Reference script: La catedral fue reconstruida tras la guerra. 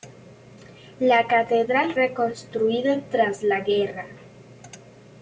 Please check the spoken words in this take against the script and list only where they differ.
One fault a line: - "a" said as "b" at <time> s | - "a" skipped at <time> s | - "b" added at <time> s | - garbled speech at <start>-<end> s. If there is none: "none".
- "fue" skipped at 1.9 s